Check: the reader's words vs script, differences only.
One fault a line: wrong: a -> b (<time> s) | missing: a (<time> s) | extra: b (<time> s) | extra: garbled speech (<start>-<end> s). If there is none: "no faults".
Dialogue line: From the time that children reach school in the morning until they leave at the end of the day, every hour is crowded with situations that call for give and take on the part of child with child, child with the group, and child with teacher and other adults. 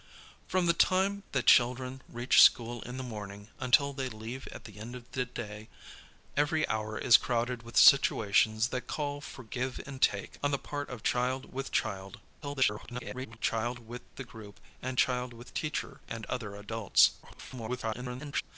extra: garbled speech (12.4-13.4 s)
extra: garbled speech (17.2-18.4 s)